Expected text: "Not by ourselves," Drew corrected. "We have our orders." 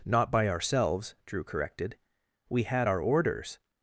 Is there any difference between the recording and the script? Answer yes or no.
yes